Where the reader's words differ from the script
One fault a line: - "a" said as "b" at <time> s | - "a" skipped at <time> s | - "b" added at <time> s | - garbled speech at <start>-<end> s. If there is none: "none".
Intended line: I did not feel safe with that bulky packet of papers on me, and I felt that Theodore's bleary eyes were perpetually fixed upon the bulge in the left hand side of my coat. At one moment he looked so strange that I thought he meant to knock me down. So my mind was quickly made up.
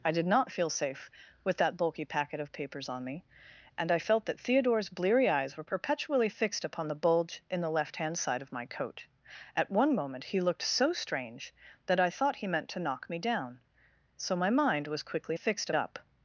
- "made" said as "fixed" at 15.3 s